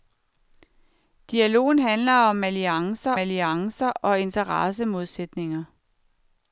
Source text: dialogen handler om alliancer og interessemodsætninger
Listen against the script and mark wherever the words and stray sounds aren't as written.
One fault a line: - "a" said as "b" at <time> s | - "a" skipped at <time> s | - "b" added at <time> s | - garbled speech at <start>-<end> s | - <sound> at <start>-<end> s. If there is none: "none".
- "alliancer" added at 3.2 s